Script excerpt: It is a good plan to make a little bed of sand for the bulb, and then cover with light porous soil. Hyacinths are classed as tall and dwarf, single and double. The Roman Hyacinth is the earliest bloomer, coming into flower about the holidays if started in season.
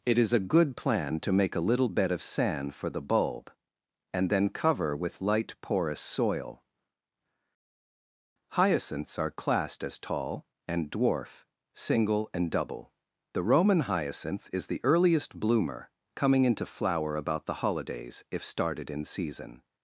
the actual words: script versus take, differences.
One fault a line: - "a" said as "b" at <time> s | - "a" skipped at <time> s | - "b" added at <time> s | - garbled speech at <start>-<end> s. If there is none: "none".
none